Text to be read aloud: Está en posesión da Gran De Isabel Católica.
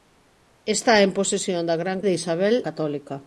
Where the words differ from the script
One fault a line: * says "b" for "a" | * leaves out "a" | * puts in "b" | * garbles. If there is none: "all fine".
all fine